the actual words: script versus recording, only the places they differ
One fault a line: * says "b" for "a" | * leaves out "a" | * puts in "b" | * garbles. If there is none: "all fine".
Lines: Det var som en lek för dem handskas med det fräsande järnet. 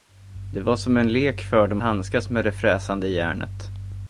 all fine